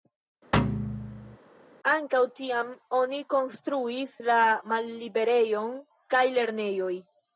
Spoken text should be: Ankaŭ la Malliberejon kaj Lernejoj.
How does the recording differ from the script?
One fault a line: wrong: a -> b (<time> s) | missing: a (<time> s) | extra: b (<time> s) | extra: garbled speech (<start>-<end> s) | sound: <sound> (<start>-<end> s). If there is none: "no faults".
sound: thud (0.5-1.4 s)
extra: tiam oni konstruis (2.4 s)